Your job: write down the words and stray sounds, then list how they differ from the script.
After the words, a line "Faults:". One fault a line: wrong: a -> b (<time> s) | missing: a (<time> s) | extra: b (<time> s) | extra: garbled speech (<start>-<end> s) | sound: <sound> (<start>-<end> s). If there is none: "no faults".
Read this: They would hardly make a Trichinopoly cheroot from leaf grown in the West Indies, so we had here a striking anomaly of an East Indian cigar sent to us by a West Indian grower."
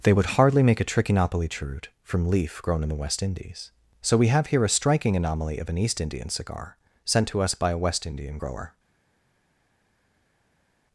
They would hardly make a Trichinopoly cheroot from leaf grown in the West Indies, so we have here a striking anomaly of an East Indian cigar sent to us by a West Indian grower."
Faults:
wrong: had -> have (4.3 s)